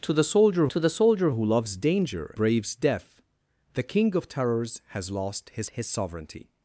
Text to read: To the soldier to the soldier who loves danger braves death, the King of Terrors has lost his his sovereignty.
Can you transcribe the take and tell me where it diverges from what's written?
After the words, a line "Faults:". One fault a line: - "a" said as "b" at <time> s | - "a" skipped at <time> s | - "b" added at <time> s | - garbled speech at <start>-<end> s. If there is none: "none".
To the soldier to the soldier who loves danger braves death, the King of Terrors has lost his his sovereignty.
Faults:
none